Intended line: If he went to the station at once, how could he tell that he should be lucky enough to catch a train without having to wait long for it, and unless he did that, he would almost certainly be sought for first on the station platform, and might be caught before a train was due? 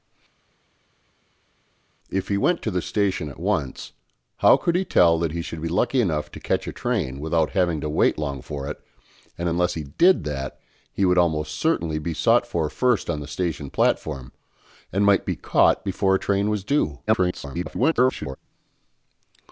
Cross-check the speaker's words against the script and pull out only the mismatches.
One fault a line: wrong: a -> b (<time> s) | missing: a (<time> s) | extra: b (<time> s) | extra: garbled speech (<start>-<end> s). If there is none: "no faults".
extra: garbled speech (17.1-18.4 s)